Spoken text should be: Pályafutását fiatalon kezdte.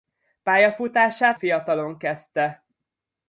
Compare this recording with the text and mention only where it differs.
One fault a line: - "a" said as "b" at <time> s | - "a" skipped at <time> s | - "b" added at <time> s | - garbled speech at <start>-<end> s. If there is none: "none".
none